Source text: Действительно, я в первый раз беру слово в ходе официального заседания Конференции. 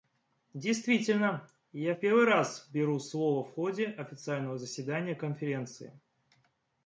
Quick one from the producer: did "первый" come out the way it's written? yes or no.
yes